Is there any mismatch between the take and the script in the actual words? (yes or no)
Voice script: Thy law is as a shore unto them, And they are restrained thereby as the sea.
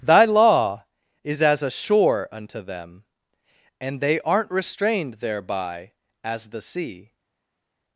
yes